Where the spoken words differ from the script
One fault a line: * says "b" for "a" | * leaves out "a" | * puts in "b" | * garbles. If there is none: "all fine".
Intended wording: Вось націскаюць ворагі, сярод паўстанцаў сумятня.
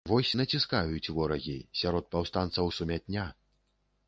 all fine